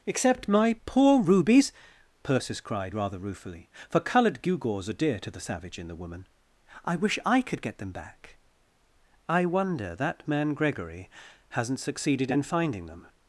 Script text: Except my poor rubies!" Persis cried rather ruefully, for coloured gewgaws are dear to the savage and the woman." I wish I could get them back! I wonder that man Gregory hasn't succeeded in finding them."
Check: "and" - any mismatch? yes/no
yes